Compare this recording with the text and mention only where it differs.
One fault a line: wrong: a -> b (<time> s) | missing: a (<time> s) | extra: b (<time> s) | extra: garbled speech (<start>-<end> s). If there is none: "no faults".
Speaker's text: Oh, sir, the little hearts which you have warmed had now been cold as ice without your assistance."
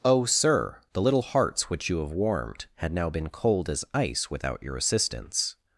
no faults